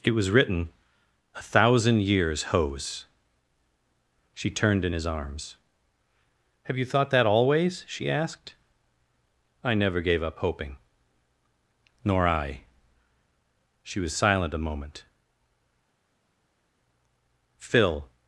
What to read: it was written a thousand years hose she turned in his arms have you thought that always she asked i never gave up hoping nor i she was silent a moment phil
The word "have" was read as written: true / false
true